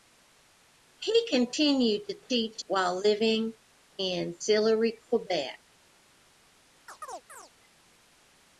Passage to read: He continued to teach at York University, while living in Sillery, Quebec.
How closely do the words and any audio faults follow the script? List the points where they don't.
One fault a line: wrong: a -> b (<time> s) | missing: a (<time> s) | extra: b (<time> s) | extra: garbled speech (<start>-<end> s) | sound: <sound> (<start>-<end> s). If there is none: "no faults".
missing: at York University (2.6 s)
sound: chirp (6.9-7.5 s)